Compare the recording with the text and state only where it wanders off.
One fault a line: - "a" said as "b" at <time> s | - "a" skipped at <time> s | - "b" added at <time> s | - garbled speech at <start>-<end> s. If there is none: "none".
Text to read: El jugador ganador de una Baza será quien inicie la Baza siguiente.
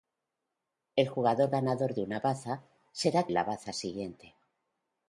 - "quien inicie" skipped at 3.3 s